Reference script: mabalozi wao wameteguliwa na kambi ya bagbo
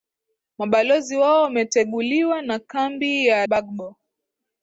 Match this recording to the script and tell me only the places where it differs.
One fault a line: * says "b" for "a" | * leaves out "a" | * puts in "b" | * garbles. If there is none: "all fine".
all fine